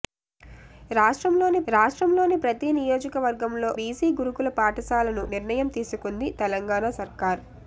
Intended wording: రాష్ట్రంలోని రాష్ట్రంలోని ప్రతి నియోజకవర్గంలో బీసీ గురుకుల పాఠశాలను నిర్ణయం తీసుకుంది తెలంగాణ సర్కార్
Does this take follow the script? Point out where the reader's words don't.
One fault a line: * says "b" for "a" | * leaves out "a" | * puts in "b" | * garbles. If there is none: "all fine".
all fine